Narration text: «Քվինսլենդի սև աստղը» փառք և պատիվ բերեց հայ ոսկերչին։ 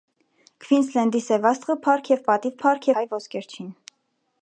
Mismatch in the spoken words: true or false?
true